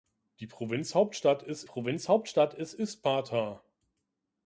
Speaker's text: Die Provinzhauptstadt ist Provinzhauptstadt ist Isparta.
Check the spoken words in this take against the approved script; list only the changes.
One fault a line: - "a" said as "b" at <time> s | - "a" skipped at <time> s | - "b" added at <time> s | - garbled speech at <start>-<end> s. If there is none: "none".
none